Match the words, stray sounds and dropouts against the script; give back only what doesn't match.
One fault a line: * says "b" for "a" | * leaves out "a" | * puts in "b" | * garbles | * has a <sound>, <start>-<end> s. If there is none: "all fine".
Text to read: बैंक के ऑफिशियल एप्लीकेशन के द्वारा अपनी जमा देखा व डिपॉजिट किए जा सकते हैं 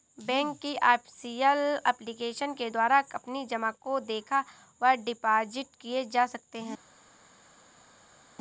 * says "की" for "के"
* puts in "को"